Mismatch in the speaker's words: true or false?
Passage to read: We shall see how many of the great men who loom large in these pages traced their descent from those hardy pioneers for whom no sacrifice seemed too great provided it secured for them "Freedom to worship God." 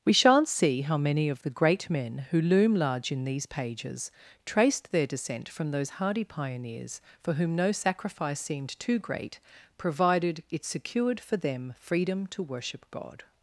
true